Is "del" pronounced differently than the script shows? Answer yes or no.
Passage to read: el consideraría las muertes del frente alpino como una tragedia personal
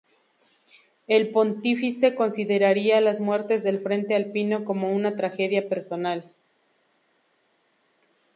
no